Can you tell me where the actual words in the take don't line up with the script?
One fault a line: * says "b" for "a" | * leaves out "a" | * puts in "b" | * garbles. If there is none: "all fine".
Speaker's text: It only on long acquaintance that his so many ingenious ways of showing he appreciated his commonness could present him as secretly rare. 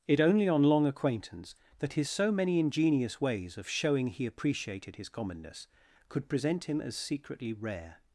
all fine